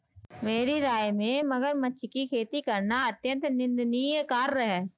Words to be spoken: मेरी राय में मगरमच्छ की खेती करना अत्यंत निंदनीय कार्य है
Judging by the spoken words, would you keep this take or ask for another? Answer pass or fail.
pass